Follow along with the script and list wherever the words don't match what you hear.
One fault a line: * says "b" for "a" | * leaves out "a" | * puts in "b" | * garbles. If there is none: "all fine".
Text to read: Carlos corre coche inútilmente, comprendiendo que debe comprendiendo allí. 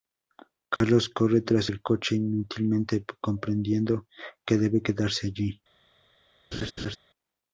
* puts in "tras el"
* says "quedarse" for "comprendiendo"